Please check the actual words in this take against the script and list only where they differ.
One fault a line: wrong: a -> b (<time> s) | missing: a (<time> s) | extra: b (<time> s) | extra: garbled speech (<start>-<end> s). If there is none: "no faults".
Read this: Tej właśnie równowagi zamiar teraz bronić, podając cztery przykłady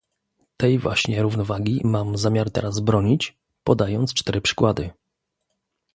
extra: mam (1.8 s)